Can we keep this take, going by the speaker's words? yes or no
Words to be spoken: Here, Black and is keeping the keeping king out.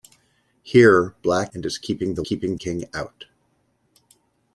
yes